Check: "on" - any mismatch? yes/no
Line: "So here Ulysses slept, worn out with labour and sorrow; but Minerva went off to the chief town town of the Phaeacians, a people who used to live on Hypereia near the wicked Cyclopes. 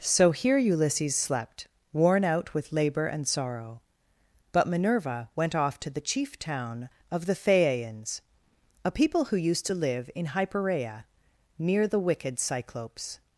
yes